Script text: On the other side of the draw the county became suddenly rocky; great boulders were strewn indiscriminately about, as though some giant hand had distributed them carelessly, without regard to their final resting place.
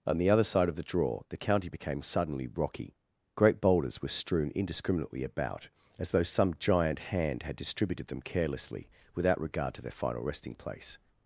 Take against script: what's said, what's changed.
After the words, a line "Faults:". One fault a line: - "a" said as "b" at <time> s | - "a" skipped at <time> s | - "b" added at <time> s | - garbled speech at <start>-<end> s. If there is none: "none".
On the other side of the draw the county became suddenly rocky; great boulders were strewn indiscriminately about, as though some giant hand had distributed them carelessly, without regard to their final resting place.
Faults:
none